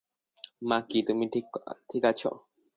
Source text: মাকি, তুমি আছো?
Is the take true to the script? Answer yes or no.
no